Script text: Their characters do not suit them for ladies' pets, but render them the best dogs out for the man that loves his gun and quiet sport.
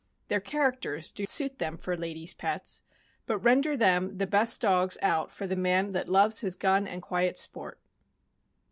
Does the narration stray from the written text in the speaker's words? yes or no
yes